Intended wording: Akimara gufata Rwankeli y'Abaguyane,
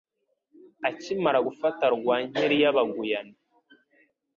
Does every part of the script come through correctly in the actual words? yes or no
yes